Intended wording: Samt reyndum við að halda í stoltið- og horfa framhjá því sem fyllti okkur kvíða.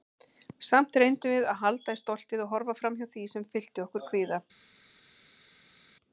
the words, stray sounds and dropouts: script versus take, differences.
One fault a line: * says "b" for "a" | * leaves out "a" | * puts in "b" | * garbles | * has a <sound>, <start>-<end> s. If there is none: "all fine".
all fine